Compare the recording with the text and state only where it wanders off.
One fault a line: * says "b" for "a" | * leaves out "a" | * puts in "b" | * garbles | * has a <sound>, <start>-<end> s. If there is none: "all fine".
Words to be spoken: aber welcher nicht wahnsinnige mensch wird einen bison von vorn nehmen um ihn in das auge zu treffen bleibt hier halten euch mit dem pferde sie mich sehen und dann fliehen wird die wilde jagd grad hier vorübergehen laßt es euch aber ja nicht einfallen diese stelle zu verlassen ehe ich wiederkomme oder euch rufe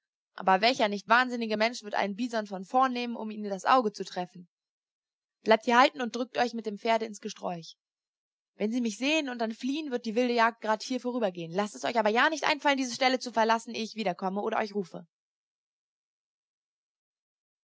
* puts in "und drückt"
* puts in "ins gesträuch wenn"